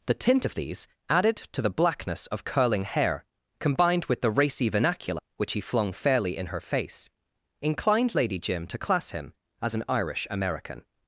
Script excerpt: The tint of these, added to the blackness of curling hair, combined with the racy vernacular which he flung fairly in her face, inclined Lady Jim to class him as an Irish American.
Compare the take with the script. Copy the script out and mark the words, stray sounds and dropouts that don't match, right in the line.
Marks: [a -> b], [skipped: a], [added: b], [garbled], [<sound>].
The tint of these, added to the blackness of curling hair, combined with the racy vernacular which he flung fairly in her face, inclined Lady Jim to class him as an Irish American.